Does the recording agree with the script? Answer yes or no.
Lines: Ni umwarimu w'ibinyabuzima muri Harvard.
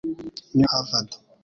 no